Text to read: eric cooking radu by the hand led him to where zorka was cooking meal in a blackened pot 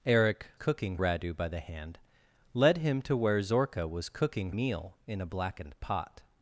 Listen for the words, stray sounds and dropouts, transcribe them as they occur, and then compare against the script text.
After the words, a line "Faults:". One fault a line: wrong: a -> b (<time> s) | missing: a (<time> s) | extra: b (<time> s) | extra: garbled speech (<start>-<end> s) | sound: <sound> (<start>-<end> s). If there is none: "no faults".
eric cooking radu by the hand led him to where zorka was cooking meal in a blackened pot
Faults:
no faults